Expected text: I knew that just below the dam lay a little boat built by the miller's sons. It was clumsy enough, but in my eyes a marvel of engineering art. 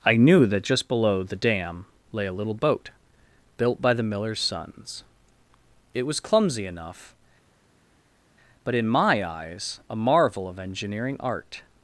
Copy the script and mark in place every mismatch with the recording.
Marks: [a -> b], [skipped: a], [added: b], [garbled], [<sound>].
I knew that just below the dam lay a little boat built by the miller's sons. It was clumsy enough, but in my eyes a marvel of engineering art.